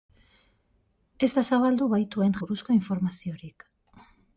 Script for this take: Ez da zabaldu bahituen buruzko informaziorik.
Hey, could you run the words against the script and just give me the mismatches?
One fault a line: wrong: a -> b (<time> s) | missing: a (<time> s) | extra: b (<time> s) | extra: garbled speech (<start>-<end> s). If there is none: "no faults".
no faults